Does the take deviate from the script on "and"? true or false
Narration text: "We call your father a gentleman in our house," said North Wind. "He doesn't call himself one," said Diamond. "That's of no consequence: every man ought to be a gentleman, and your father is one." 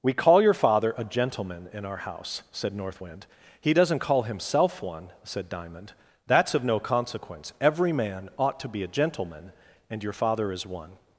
false